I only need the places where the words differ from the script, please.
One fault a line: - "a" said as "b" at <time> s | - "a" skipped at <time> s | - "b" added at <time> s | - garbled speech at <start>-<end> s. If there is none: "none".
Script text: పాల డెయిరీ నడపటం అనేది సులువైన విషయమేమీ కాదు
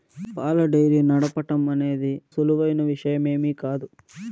none